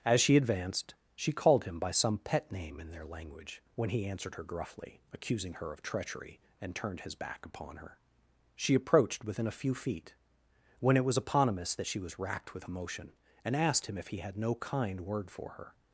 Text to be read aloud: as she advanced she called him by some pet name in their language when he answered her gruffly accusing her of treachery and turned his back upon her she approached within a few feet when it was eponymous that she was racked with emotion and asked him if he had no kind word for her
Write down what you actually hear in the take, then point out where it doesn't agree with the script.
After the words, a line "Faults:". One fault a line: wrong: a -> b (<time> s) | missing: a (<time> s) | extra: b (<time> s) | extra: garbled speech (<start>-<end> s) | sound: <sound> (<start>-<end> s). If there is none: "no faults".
as she advanced she called him by some pet name in their language when he answered her gruffly accusing her of treachery and turned his back upon her she approached within a few feet when it was eponymous that she was racked with emotion and asked him if he had no kind word for her
Faults:
no faults